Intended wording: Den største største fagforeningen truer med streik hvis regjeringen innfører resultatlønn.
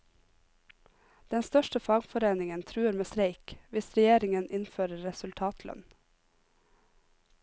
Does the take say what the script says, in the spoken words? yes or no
no